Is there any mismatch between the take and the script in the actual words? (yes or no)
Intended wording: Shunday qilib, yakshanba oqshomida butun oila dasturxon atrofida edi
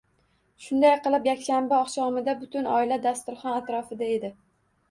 no